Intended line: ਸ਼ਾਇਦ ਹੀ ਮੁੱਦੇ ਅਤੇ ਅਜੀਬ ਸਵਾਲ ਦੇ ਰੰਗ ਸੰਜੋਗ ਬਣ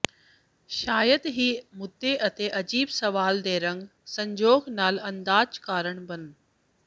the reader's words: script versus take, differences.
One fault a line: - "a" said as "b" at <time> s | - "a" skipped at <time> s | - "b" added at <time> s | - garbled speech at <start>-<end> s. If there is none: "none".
- "ਨਾਲ ਅੰਦਾਜ਼ ਕਾਰਨ" added at 4.7 s